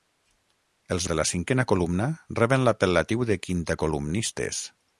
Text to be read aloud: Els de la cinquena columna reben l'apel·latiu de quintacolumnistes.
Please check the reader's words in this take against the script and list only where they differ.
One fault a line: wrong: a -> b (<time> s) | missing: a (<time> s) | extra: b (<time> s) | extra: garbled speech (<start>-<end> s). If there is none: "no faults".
no faults